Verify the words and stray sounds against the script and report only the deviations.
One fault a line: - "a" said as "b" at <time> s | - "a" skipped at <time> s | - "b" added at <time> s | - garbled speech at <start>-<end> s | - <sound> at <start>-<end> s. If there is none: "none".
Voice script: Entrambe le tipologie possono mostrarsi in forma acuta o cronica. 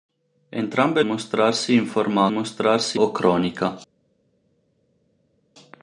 - "le tipologie possono" skipped at 1.0 s
- "acuta" said as "mostrarsi" at 2.3 s